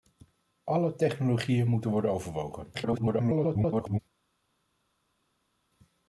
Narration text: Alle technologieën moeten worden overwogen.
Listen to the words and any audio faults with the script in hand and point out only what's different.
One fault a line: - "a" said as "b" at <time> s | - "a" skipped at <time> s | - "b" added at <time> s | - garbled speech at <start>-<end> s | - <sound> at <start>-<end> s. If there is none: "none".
- garbled speech at 2.7-4.0 s